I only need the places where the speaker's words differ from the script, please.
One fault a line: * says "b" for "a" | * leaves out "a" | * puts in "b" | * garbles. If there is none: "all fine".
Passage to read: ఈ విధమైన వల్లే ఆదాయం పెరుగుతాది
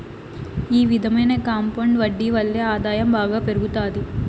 * puts in "కాంపౌండ్ వడ్డీ"
* puts in "బాగా"